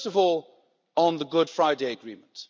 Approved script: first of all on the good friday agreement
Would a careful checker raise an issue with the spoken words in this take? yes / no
no